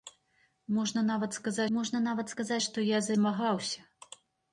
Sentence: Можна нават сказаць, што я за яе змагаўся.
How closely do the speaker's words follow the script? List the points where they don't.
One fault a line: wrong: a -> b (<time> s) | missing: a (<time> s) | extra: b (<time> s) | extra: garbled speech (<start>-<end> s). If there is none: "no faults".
extra: можна нават сказаць (1.8 s)
missing: яе (3.1 s)